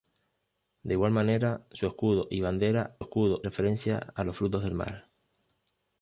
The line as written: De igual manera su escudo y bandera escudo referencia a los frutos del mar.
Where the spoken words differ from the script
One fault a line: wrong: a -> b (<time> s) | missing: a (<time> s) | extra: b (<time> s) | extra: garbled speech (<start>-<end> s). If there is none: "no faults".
no faults